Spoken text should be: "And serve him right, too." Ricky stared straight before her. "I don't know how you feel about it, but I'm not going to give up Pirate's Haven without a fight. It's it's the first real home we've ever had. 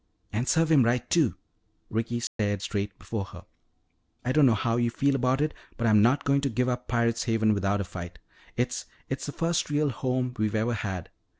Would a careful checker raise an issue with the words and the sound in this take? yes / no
yes